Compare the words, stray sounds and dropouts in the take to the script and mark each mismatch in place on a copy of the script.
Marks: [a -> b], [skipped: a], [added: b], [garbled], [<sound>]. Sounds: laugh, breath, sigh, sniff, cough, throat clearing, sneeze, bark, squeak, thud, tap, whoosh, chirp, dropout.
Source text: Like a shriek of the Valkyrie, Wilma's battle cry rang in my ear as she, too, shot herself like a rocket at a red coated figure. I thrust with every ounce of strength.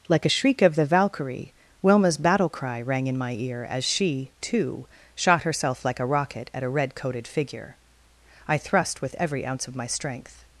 Like a shriek of the Valkyrie, Wilma's battle cry rang in my ear as she, too, shot herself like a rocket at a red coated figure. I thrust with every ounce of [added: my] strength.